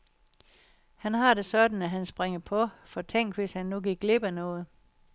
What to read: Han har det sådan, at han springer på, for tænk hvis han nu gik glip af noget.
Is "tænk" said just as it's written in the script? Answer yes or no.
yes